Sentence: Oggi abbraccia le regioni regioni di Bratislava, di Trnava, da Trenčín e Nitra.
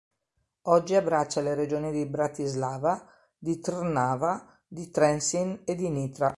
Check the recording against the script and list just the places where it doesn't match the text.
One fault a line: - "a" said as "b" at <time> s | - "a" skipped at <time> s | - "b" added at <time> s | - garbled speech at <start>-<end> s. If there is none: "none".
- "regioni" skipped at 1.9 s
- "da" said as "di" at 4.7 s
- "di" added at 5.7 s